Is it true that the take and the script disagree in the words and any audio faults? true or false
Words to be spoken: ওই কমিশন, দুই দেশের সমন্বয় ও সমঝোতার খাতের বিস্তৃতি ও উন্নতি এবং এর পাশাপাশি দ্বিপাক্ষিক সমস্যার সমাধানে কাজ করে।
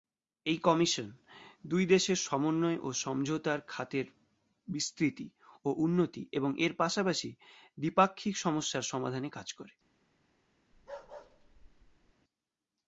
true